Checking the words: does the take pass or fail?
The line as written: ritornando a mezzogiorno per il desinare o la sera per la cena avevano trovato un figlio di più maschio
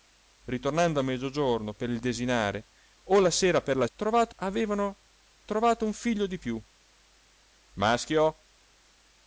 fail